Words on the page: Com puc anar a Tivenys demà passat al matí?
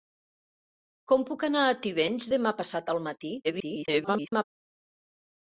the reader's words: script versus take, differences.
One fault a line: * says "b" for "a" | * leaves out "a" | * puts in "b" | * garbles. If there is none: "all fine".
* garbles